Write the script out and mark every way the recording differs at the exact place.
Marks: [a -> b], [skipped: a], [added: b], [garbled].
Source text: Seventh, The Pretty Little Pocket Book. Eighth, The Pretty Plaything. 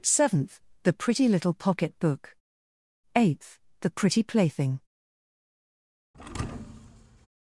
Seventh, The Pretty Little Pocket Book. Eighth, The Pretty Plaything.